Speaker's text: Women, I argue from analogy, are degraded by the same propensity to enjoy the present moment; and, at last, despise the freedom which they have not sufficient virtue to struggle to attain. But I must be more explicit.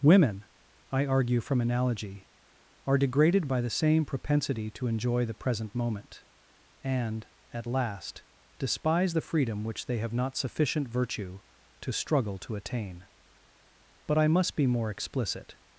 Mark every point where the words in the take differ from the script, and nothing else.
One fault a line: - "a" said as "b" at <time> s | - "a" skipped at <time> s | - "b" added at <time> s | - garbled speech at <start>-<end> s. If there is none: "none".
none